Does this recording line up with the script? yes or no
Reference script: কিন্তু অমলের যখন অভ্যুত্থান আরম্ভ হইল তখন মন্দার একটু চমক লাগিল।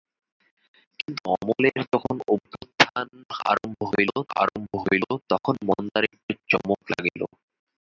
no